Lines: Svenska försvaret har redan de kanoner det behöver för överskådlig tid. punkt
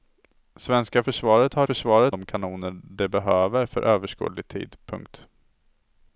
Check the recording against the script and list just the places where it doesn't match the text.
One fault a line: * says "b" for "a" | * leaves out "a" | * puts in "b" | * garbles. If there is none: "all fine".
* says "försvaret" for "redan"